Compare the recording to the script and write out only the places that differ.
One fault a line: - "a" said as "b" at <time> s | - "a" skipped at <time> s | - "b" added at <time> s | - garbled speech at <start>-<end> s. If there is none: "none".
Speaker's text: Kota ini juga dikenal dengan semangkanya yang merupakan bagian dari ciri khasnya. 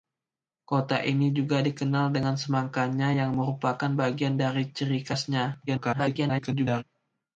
- garbled speech at 5.7-6.8 s